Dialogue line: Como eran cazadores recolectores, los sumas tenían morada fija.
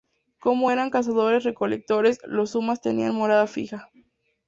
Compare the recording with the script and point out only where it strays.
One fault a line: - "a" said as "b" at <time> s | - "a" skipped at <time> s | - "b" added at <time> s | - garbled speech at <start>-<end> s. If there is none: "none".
none